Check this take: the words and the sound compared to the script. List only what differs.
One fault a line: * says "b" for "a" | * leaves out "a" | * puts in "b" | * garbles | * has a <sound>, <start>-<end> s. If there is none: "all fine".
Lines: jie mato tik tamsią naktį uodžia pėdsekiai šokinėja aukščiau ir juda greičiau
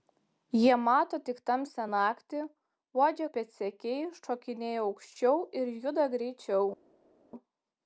all fine